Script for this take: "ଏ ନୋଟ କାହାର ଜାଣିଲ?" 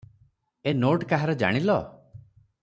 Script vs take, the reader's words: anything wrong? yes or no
no